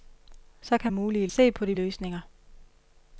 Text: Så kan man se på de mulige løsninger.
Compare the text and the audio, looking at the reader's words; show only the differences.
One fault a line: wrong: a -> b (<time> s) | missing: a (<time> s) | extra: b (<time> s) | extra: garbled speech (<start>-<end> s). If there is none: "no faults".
wrong: man -> mulige (0.9 s)
missing: mulige (1.8 s)